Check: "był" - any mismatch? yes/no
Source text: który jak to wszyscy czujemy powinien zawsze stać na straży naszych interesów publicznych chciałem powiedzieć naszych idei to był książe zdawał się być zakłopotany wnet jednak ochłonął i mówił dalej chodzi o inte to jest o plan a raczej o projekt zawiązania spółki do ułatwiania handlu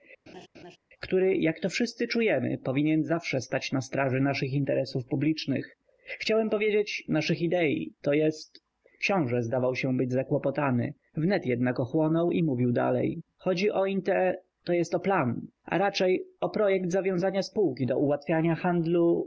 yes